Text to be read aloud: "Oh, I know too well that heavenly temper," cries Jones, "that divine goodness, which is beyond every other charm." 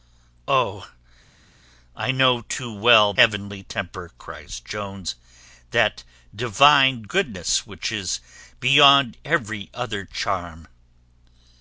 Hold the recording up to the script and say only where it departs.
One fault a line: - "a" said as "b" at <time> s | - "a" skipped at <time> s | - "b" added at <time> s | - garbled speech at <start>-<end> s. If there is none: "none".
- "that" skipped at 3.1 s